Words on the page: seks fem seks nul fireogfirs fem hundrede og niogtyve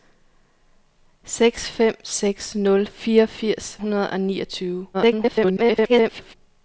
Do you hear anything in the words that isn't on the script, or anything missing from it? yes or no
yes